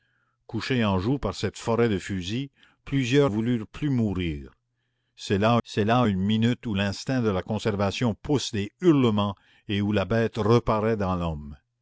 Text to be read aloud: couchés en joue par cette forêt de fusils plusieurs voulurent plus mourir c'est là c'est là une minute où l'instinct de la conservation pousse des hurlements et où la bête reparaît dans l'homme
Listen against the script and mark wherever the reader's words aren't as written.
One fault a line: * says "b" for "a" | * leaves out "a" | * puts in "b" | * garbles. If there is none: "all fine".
all fine